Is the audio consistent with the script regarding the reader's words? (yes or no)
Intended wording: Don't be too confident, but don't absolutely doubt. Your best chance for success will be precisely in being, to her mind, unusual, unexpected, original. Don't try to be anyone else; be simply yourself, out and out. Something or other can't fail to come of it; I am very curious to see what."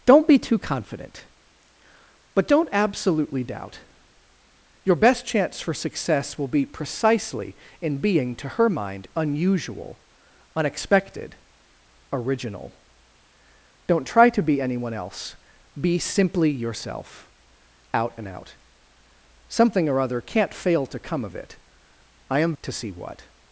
no